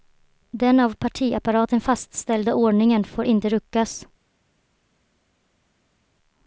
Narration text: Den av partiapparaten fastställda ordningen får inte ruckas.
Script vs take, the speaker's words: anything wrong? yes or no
no